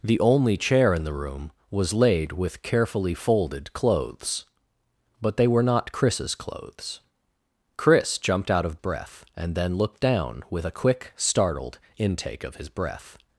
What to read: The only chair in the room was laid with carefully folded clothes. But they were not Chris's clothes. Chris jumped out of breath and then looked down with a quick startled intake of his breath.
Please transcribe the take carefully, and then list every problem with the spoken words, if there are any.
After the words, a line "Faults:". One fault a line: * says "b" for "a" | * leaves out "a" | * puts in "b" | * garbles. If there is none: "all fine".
The only chair in the room was laid with carefully folded clothes. But they were not Chris's clothes. Chris jumped out of breath and then looked down with a quick startled intake of his breath.
Faults:
all fine